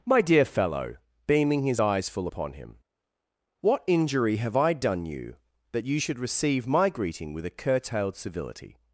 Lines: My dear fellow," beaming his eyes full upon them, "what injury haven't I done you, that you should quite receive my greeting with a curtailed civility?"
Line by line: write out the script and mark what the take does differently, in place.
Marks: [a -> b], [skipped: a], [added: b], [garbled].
My dear fellow," beaming his eyes full upon [them, -> him] "what injury [haven't -> have] I done you, that you should [skipped: quite] receive my greeting with a curtailed civility?"